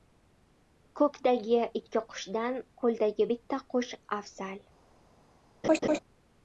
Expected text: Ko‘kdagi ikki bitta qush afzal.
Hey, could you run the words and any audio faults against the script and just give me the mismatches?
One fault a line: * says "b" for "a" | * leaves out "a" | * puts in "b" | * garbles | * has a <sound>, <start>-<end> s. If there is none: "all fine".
* puts in "qushdan qo‘ldagi"
* has a laugh, 5.6-6.0 s